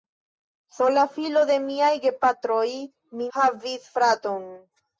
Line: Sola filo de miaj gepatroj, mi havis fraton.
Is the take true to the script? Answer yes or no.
yes